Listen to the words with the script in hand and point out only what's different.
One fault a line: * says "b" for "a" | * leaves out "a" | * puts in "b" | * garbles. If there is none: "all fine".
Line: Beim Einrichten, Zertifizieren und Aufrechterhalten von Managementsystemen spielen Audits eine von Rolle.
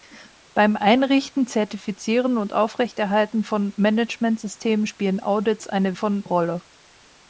all fine